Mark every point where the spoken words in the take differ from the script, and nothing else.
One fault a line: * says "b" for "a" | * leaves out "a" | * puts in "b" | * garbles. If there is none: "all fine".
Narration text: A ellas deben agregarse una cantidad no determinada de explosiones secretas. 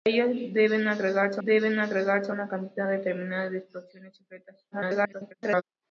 * puts in "deben agregarse"
* leaves out "no"
* garbles